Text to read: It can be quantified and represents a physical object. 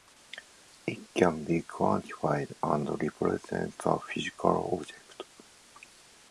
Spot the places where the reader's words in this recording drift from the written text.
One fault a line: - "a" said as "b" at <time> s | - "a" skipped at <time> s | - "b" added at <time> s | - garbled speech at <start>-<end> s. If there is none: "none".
none